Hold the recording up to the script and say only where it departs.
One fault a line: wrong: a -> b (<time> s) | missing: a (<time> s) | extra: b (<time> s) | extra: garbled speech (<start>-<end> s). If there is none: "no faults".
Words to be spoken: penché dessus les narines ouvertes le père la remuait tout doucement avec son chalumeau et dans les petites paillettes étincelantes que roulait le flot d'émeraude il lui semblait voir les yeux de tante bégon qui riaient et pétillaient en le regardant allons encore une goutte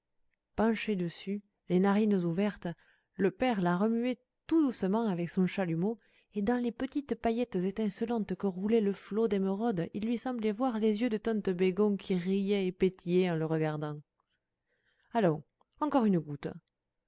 no faults